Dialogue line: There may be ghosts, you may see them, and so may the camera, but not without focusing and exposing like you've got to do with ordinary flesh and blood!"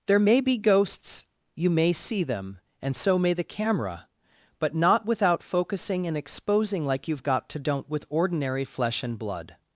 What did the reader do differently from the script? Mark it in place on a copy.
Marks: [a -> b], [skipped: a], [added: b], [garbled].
There may be ghosts, you may see them, and so may the camera, but not without focusing and exposing like you've got to [do -> don't] with ordinary flesh and blood!"